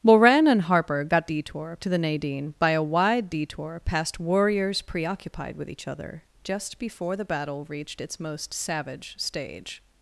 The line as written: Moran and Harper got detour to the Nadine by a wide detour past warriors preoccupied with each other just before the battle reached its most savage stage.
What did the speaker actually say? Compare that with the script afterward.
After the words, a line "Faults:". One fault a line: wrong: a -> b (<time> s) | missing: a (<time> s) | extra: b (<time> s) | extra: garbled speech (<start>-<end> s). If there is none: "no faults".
Moran and Harper got detour to the Nadine by a wide detour past warriors preoccupied with each other just before the battle reached its most savage stage.
Faults:
no faults